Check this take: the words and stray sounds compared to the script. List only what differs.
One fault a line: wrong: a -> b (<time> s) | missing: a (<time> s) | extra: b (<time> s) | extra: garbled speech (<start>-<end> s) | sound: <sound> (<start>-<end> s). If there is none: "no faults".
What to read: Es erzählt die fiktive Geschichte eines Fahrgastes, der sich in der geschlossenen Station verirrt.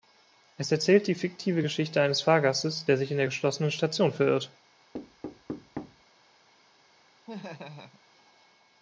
sound: thud (4.9-6.0 s)
sound: laugh (7.3-8.0 s)